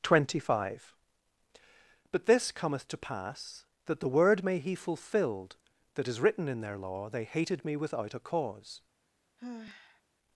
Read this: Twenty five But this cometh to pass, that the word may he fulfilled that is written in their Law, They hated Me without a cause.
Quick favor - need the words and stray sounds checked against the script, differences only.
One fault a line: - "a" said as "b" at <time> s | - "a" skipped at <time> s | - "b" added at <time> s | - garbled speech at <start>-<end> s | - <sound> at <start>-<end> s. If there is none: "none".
- sigh at 9.4-10.0 s